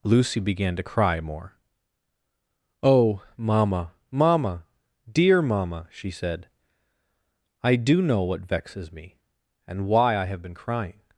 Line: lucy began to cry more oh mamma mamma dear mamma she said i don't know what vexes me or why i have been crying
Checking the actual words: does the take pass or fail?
fail